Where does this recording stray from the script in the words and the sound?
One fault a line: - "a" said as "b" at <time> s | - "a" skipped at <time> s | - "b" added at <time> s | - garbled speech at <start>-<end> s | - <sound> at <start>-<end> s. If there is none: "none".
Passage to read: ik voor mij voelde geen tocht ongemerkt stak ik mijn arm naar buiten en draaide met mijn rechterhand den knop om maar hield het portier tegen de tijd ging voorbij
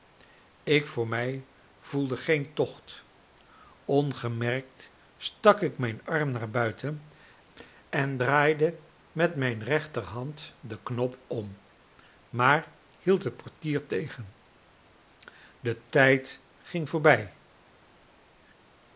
none